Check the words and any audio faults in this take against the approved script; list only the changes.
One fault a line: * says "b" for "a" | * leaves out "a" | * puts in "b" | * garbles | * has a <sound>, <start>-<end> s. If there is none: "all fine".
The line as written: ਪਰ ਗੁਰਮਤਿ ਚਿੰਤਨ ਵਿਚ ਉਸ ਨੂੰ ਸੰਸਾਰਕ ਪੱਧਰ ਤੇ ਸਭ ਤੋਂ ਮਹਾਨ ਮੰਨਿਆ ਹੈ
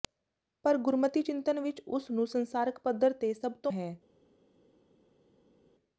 * leaves out "ਮਹਾਨ ਮੰਨਿਆ"